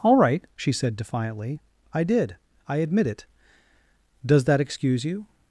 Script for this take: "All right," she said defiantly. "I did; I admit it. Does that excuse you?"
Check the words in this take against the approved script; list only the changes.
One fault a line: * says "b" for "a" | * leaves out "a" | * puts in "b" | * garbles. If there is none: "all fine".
all fine